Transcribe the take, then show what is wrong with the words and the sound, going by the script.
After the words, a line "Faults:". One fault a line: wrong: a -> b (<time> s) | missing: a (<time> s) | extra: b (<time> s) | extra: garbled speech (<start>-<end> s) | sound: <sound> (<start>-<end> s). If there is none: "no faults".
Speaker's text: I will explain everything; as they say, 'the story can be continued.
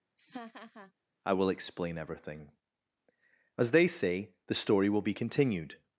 I will explain everything; as they say, 'the story will be continued.
Faults:
sound: laugh (0.2-0.9 s)
wrong: can -> will (4.9 s)